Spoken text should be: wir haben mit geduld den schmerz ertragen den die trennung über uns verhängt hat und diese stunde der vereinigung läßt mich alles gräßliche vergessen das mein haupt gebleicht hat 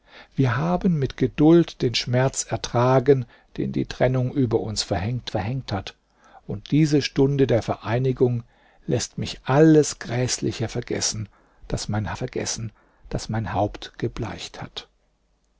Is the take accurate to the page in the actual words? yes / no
no